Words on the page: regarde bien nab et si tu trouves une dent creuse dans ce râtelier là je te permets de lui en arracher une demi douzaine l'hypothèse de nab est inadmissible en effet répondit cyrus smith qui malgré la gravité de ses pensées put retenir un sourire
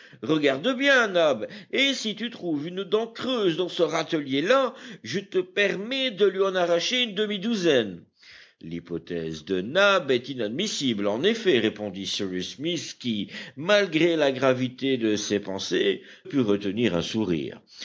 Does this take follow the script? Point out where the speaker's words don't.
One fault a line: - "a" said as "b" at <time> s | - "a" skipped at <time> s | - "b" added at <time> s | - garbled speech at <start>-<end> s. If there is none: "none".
none